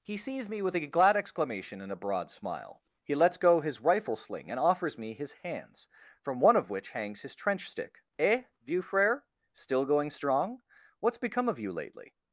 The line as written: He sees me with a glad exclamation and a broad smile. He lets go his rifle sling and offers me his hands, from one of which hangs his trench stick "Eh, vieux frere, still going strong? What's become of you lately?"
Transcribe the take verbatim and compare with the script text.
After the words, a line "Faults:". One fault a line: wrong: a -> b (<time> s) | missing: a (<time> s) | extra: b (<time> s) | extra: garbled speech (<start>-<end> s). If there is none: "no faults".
He sees me with a glad exclamation and a broad smile. He lets go his rifle sling and offers me his hands, from one of which hangs his trench stick "Eh, vieux frere, still going strong? What's become of you lately?"
Faults:
no faults